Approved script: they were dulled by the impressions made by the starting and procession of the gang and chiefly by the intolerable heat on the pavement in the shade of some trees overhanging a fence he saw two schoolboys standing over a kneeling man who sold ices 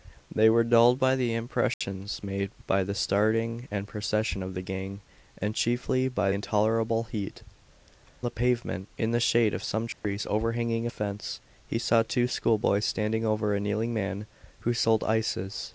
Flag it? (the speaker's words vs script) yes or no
yes